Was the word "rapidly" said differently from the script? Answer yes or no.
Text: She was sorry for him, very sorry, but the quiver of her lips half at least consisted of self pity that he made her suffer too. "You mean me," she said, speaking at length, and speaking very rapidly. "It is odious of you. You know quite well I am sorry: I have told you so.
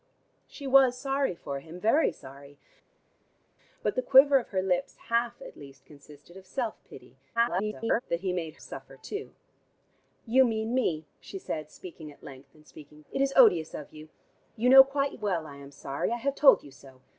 yes